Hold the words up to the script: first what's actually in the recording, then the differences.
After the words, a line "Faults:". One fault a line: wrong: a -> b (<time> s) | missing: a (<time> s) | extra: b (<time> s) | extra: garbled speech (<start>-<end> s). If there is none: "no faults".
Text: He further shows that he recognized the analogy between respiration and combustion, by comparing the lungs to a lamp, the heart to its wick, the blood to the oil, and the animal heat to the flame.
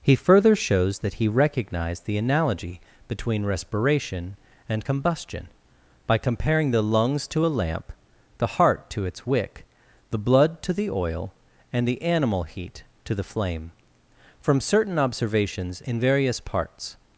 He further shows that he recognized the analogy between respiration and combustion, by comparing the lungs to a lamp, the heart to its wick, the blood to the oil, and the animal heat to the flame. From certain observations in various parts
Faults:
extra: From certain observations in various parts (14.4 s)